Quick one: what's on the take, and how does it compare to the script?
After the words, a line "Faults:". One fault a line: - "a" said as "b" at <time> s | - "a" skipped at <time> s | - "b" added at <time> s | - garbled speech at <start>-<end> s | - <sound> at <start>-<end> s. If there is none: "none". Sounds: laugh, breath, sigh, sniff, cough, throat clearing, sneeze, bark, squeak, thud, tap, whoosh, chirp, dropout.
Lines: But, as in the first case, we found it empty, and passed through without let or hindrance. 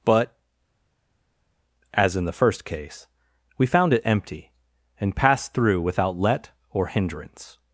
But, as in the first case, we found it empty, and passed through without let or hindrance.
Faults:
none